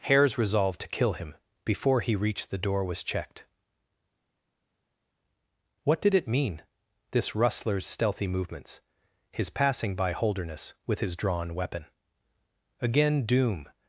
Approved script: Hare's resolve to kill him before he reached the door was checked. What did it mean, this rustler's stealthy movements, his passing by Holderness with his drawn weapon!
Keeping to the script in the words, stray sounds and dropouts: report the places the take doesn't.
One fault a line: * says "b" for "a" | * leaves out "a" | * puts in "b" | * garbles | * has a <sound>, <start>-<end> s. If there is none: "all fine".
* puts in "Again doom"